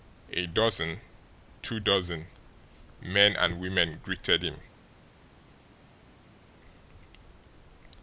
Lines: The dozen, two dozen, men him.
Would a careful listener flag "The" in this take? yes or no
yes